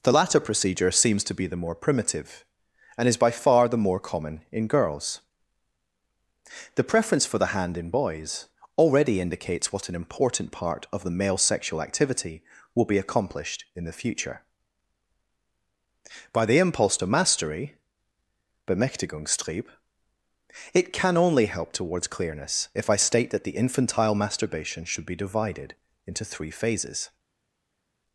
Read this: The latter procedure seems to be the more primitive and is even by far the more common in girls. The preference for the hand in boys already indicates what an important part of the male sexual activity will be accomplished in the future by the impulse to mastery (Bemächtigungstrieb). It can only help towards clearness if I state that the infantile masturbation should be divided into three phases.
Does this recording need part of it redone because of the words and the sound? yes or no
yes